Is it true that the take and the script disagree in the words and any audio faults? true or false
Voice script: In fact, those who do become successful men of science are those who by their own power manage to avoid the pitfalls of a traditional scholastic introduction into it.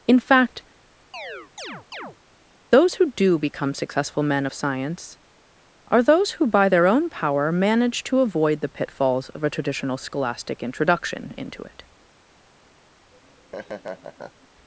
true